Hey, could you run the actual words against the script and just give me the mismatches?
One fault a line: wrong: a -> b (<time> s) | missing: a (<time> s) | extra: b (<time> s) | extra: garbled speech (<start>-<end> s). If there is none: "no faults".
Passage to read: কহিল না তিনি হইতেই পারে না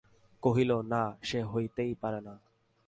wrong: তিনি -> সে (1.2 s)